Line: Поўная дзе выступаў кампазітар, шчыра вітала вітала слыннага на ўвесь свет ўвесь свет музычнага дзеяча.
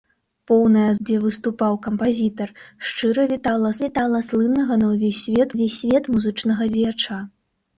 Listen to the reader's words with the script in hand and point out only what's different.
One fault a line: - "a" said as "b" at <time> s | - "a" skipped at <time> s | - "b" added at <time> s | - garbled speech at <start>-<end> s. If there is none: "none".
none